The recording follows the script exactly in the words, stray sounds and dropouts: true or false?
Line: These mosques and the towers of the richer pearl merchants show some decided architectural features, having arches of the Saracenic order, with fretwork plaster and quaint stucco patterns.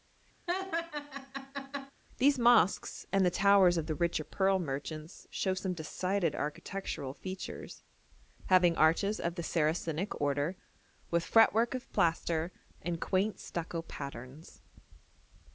false